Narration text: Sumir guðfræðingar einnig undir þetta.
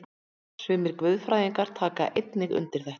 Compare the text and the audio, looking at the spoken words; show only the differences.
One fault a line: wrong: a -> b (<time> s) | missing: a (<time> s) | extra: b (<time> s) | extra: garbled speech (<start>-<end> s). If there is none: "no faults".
extra: taka (1.8 s)